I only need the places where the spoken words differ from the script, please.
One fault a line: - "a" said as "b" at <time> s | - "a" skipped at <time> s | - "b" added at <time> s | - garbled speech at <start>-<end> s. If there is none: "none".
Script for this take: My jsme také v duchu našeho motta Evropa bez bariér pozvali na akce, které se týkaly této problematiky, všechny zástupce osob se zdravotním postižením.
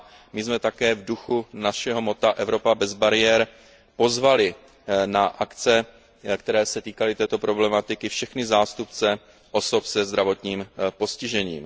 none